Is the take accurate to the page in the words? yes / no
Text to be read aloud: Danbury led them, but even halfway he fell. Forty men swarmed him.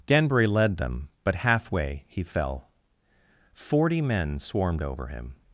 no